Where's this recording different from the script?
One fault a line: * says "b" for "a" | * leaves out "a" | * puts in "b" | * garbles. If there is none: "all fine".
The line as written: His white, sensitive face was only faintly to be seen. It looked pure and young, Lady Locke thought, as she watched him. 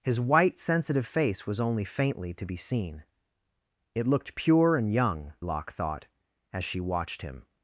* leaves out "Lady"